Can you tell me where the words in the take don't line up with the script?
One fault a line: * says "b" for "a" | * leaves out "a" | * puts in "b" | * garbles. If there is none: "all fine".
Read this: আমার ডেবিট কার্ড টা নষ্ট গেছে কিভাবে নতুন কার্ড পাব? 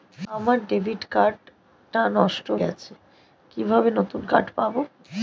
all fine